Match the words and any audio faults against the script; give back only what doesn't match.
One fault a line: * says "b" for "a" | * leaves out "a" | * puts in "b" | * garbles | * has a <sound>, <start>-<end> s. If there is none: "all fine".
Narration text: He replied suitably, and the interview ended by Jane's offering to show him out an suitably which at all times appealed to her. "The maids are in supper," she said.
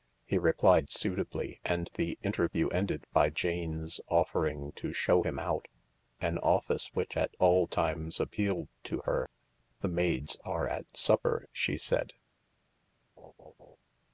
* says "office" for "suitably"
* says "at" for "in"
* has a laugh, 13.2-13.8 s